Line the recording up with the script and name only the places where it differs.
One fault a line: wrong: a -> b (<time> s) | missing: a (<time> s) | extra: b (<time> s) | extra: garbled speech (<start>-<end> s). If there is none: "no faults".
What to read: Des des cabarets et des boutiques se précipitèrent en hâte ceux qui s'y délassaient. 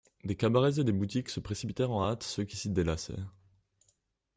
missing: des (0.3 s)